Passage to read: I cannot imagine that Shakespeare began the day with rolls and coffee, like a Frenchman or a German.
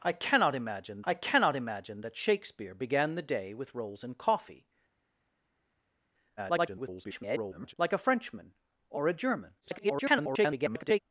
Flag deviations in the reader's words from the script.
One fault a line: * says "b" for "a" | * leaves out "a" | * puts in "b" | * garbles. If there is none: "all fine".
* puts in "I cannot imagine"
* garbles
* garbles